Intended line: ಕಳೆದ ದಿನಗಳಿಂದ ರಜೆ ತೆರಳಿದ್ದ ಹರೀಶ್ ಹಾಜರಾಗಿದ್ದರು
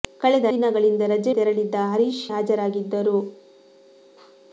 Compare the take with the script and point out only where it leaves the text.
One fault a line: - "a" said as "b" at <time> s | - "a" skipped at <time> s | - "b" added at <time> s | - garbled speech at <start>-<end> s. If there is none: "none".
none